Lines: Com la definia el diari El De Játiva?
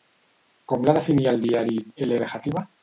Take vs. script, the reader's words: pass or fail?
pass